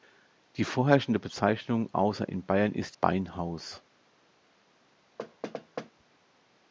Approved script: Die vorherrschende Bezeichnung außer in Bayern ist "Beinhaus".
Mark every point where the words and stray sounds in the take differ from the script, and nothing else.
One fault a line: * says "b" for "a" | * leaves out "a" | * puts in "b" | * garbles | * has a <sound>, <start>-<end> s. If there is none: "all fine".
* has a thud, 5.2-5.9 s